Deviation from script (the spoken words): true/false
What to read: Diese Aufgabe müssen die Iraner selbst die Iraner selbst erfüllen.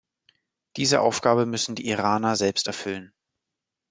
true